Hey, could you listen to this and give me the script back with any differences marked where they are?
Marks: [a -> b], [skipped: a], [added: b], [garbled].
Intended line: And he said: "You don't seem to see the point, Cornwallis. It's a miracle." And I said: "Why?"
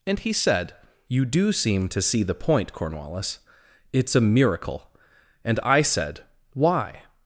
And he said: "You [don't -> do] seem to see the point, Cornwallis. It's a miracle." And I said: "Why?"